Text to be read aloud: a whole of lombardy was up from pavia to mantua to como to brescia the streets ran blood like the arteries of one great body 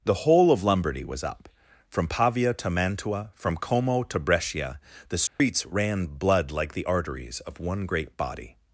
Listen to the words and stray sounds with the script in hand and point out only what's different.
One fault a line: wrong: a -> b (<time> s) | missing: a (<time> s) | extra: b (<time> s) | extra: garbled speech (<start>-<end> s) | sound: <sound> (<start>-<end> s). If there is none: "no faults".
wrong: a -> the (0.0 s)
wrong: to -> from (3.4 s)
sound: dropout (5.3-5.4 s)